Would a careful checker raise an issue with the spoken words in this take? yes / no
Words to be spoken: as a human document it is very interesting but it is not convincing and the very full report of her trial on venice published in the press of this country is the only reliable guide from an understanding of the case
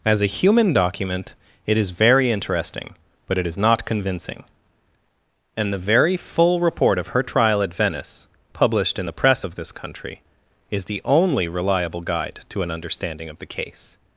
yes